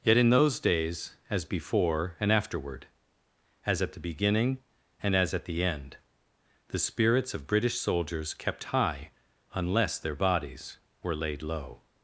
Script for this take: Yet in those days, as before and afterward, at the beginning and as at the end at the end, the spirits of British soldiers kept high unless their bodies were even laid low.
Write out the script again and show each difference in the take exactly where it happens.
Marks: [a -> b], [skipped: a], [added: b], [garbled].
Yet in those days, as before and afterward, [added: as] at the beginning and as at the end [skipped: at] the [skipped: end, the] spirits of British soldiers kept high unless their bodies were [skipped: even] laid low.